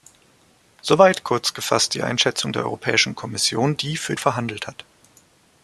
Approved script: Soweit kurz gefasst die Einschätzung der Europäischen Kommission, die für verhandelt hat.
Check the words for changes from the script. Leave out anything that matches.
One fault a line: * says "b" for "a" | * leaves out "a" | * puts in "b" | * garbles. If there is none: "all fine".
all fine